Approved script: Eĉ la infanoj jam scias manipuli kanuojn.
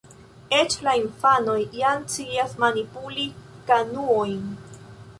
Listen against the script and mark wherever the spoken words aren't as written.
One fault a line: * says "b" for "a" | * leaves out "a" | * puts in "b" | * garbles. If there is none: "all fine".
all fine